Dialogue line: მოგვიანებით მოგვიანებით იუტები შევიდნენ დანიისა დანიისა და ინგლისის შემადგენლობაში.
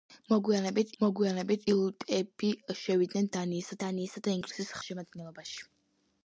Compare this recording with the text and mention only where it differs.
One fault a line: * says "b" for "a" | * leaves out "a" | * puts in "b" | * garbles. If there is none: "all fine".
all fine